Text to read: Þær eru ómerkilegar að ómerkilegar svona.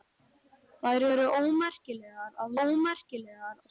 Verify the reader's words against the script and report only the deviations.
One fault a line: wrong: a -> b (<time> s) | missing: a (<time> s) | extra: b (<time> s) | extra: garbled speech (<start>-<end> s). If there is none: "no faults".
no faults